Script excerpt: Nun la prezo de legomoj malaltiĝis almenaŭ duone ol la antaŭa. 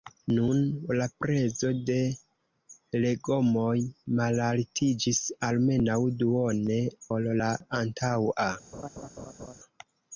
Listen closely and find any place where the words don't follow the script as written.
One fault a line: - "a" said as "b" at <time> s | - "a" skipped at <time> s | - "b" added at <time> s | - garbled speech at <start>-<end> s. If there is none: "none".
none